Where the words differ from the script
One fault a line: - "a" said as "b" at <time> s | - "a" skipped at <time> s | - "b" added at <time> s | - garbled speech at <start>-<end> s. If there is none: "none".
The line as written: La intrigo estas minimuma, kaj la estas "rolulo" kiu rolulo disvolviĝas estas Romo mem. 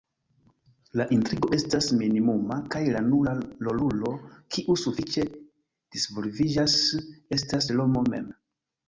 - "estas" said as "nura" at 3.1 s
- "rolulo" said as "sufiĉe" at 4.8 s